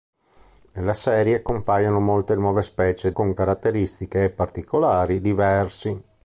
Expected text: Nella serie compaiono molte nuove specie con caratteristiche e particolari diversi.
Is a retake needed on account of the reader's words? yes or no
no